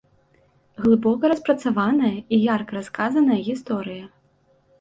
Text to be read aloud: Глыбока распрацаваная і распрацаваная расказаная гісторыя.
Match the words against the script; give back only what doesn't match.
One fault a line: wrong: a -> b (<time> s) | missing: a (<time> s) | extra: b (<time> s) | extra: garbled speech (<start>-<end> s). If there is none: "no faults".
wrong: распрацаваная -> ярка (2.5 s)